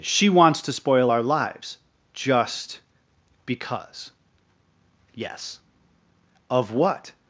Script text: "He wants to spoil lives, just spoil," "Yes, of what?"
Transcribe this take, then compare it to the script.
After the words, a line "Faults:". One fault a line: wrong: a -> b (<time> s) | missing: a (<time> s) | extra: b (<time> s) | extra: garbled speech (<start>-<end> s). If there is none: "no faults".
"She wants to spoil our lives, just because," "Yes, of what?"
Faults:
wrong: He -> She (0.0 s)
extra: our (1.1 s)
wrong: spoil -> because (3.5 s)